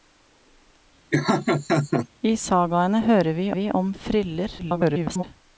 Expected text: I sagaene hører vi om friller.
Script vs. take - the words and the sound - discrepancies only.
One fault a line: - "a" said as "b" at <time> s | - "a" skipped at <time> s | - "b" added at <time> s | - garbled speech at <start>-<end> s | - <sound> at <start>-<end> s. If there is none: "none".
- laugh at 1.1-2.1 s
- "vi" added at 3.5 s
- garbled speech at 4.6-5.2 s